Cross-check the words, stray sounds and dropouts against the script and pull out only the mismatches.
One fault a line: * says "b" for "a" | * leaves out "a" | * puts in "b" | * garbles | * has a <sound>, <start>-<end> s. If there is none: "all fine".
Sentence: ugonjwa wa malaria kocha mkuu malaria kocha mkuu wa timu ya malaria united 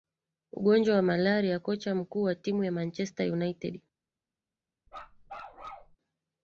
* leaves out "malaria kocha mkuu"
* says "manchester" for "malaria"
* has a bark, 4.9-6.0 s